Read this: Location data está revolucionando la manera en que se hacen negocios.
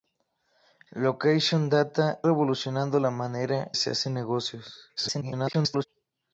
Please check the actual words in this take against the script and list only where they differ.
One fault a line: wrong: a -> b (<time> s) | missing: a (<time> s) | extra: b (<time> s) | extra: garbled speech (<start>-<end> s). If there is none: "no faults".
missing: está (2.2 s)
missing: en que (3.7 s)
extra: garbled speech (5.0-5.9 s)